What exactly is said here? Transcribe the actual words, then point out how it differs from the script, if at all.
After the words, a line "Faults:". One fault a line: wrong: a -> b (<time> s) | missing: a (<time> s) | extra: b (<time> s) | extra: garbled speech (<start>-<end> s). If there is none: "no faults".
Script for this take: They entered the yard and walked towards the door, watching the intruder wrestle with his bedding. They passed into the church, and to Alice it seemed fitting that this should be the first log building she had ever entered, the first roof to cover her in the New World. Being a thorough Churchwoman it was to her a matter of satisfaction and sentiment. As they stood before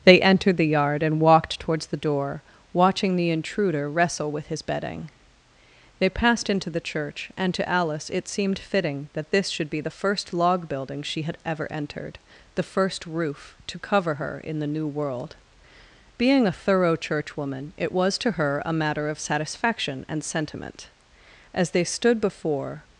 They entered the yard and walked towards the door, watching the intruder wrestle with his bedding. They passed into the church, and to Alice it seemed fitting that this should be the first log building she had ever entered, the first roof to cover her in the New World. Being a thorough Churchwoman it was to her a matter of satisfaction and sentiment. As they stood before
Faults:
no faults